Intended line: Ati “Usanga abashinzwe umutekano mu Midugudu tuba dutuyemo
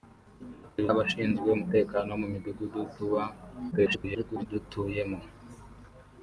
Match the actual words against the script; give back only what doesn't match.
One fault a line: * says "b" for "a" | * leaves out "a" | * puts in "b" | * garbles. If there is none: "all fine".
* leaves out "Usanga"
* garbles